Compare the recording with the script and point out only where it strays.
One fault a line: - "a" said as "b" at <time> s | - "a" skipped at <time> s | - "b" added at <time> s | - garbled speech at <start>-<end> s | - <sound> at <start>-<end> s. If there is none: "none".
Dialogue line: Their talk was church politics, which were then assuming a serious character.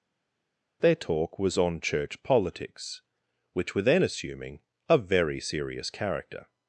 - "on" added at 1.6 s
- "very" added at 5.0 s